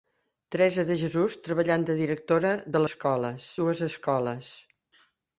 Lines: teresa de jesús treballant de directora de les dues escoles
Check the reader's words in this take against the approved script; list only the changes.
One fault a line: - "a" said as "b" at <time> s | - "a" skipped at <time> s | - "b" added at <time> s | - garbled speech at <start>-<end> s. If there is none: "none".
- "les" said as "escoles" at 2.9 s